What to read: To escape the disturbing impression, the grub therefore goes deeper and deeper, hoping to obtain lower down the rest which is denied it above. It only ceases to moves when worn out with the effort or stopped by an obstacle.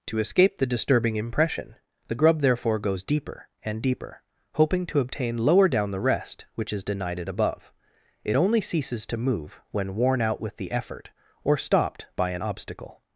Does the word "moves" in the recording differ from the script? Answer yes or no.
yes